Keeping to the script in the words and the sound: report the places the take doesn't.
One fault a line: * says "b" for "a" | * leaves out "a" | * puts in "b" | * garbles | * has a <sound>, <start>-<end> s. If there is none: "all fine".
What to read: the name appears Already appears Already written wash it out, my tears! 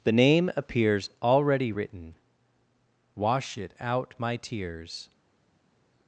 * leaves out "appears Already"